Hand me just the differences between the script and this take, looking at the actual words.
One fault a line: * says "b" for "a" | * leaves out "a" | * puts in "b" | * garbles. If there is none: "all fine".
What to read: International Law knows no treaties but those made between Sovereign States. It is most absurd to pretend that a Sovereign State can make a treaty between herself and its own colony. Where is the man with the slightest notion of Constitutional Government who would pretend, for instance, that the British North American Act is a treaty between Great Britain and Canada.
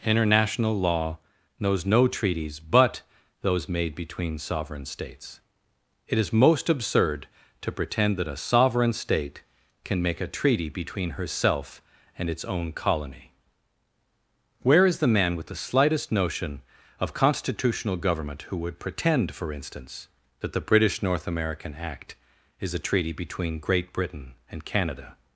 all fine